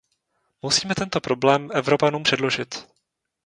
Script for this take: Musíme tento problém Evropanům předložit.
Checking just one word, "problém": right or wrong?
right